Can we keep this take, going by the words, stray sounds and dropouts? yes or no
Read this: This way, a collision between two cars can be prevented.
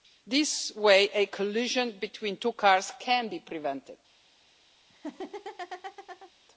no